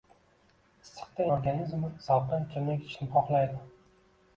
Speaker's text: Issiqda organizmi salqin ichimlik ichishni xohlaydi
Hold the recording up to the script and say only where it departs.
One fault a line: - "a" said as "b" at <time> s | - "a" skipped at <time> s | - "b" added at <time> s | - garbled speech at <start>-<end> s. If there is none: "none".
none